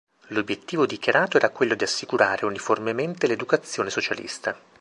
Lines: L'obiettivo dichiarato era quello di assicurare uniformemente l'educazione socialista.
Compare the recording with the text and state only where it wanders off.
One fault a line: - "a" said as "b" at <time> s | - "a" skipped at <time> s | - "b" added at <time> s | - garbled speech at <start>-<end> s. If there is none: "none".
none